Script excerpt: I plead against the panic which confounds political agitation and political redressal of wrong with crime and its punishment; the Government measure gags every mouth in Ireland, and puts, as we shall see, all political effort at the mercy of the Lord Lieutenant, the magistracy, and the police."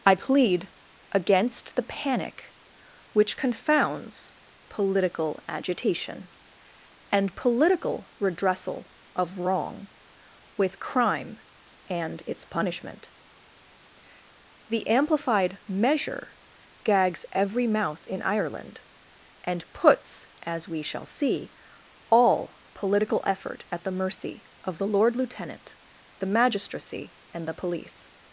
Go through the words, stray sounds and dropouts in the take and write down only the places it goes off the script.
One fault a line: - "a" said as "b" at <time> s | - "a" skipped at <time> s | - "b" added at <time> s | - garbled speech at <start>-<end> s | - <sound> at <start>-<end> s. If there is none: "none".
- "Government" said as "Amplified" at 14.9 s